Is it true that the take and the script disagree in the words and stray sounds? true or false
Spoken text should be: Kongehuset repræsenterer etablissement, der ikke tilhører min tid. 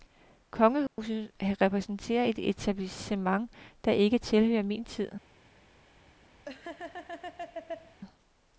true